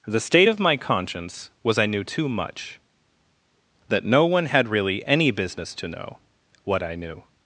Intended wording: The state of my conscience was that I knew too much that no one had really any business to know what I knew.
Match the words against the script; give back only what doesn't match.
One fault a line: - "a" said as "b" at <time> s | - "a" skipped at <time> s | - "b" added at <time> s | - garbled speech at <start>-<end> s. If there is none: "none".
- "that" skipped at 1.8 s